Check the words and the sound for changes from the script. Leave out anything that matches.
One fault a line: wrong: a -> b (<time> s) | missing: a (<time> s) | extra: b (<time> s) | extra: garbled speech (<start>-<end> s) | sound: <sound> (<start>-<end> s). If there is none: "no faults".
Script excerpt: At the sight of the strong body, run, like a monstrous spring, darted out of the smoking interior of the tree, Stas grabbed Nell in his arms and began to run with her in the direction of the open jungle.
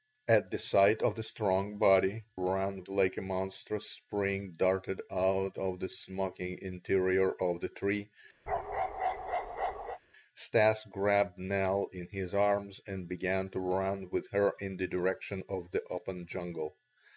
sound: bark (8.5-10.0 s)